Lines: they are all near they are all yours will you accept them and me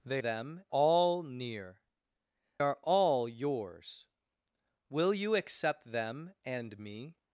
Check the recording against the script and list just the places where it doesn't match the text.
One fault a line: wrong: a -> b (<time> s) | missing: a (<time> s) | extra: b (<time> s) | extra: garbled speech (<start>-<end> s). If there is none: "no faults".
wrong: are -> them (0.2 s)
missing: they (1.8 s)